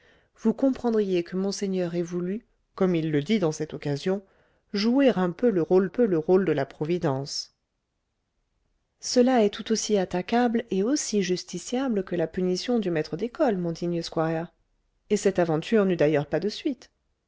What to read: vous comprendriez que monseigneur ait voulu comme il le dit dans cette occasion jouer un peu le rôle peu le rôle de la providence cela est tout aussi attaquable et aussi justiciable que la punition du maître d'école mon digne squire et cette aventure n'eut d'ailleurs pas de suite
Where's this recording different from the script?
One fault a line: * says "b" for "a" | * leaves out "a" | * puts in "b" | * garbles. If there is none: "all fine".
all fine